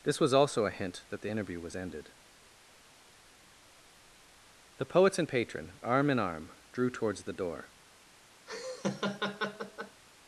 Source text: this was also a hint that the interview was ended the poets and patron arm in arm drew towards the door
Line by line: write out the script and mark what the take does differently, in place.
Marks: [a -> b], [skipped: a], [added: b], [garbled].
this was also a hint that the interview was ended the poets and patron arm in arm drew towards the door